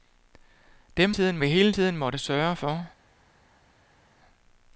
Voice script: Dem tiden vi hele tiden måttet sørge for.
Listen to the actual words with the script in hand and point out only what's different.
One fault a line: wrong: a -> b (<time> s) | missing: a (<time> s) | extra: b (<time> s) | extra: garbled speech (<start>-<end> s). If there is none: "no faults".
no faults